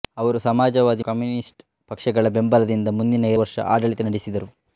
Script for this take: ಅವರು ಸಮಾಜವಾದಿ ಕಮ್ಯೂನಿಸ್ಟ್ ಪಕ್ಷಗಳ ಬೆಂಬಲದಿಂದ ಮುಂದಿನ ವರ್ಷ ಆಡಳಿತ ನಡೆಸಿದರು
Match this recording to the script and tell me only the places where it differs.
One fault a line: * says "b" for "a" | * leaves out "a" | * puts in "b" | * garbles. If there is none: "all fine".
all fine